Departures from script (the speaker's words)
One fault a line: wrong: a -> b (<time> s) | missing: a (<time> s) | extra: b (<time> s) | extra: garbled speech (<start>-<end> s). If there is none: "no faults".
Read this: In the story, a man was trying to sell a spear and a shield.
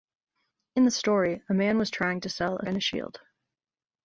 missing: spear (2.6 s)